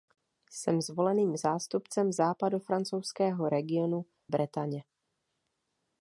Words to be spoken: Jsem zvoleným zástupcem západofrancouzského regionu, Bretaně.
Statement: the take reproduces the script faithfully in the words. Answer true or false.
true